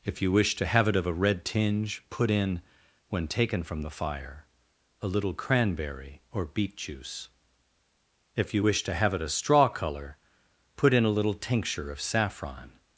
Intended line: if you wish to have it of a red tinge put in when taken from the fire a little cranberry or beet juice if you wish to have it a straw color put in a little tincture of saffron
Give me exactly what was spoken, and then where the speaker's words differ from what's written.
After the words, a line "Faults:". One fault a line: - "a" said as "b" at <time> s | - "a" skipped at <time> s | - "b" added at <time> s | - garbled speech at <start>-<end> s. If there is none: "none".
if you wish to have it of a red tinge put in when taken from the fire a little cranberry or beet juice if you wish to have it a straw color put in a little tincture of saffron
Faults:
none